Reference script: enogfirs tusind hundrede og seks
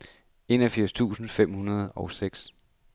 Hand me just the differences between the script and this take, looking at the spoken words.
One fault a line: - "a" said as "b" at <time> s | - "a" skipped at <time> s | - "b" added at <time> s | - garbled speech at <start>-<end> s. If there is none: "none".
- "fem" added at 1.3 s